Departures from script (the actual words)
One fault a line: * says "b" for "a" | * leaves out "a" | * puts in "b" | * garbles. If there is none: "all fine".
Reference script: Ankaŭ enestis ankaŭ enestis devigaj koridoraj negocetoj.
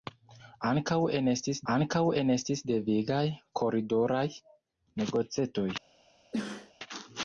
all fine